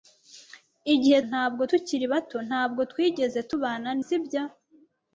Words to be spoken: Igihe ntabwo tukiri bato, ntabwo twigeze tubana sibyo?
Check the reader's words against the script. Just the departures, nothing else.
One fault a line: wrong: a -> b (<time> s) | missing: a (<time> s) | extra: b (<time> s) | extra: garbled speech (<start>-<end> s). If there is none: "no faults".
no faults